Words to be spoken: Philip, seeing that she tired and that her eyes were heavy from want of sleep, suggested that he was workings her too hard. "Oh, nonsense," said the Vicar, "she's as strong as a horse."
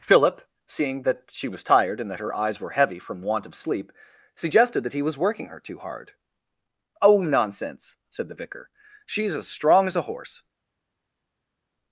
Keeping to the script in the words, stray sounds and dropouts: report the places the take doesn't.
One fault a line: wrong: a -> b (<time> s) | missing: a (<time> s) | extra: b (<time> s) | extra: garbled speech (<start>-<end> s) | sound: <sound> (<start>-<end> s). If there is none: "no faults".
extra: was (1.5 s)
wrong: workings -> working (5.2 s)